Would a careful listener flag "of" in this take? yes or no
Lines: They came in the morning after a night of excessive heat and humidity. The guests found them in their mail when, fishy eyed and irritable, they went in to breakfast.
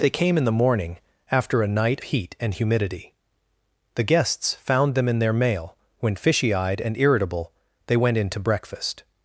yes